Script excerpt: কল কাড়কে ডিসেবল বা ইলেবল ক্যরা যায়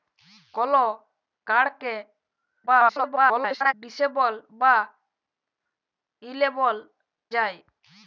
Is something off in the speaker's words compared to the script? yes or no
yes